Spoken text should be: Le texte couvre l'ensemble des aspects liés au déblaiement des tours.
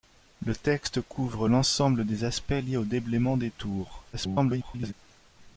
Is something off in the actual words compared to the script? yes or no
yes